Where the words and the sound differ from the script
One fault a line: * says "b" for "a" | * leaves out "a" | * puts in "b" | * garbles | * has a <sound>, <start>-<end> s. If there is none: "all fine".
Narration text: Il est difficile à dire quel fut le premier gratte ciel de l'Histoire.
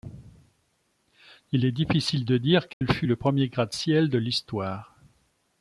* says "de" for "à"
* has a dropout, 2.7-2.8 s